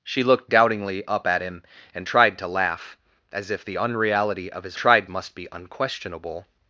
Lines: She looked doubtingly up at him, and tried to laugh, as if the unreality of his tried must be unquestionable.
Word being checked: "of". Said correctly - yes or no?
yes